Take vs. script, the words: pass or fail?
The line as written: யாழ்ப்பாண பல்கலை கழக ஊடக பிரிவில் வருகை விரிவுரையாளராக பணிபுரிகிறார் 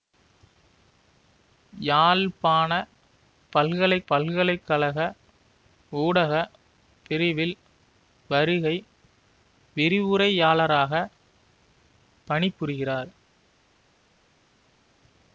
fail